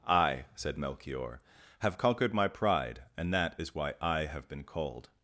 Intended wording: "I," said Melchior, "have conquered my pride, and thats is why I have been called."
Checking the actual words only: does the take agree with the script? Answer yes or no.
no